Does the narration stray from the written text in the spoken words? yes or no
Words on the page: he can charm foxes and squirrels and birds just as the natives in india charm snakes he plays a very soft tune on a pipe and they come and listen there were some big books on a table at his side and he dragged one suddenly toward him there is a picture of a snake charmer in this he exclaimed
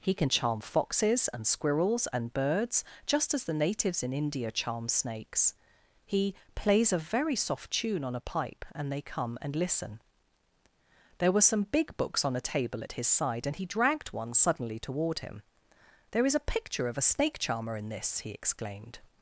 no